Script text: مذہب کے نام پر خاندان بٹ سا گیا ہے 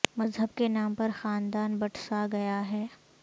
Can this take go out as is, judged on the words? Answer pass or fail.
pass